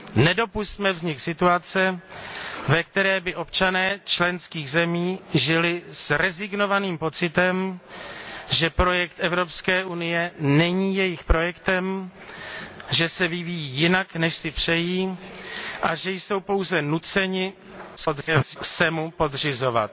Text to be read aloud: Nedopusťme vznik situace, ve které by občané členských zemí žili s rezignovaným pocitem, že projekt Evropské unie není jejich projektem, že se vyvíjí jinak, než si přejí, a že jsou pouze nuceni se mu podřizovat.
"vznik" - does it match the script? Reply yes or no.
yes